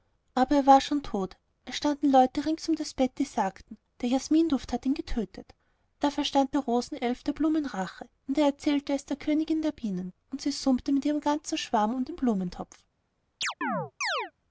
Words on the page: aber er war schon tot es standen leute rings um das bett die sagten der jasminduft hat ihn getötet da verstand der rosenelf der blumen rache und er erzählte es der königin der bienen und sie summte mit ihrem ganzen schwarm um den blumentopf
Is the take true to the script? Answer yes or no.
yes